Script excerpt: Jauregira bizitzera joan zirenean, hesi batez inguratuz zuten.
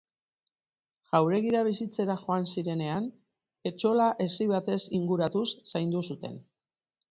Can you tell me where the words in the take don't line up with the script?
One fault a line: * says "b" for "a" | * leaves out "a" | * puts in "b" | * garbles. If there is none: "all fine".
* puts in "etxola"
* puts in "zaindu"